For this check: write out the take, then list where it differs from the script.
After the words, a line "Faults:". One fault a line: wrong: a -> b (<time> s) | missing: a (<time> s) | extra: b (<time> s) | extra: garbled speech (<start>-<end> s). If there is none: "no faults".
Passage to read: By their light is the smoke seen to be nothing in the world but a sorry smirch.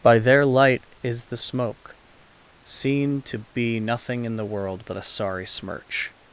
By their light is the smoke seen to be nothing in the world but a sorry smirch.
Faults:
no faults